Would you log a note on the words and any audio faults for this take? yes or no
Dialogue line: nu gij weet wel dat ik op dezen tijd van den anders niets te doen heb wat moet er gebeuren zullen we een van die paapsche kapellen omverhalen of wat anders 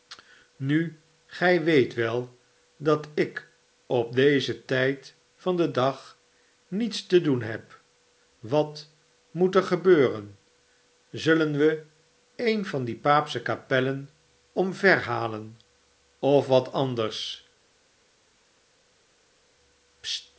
yes